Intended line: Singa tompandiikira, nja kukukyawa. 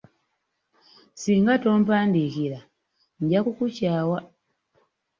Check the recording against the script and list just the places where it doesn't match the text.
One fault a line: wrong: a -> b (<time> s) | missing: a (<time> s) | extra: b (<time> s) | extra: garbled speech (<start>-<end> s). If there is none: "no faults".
no faults